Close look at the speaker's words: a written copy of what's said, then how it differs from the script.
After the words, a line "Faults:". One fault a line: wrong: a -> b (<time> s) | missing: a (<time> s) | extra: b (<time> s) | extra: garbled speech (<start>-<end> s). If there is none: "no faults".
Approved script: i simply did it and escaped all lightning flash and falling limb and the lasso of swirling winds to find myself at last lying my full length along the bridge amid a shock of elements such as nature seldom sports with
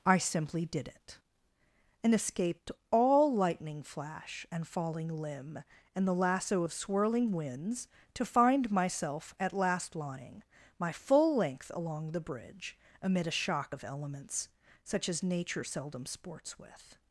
i simply did it and escaped all lightning flash and falling limb and the lasso of swirling winds to find myself at last lying my full length along the bridge amid a shock of elements such as nature seldom sports with
Faults:
no faults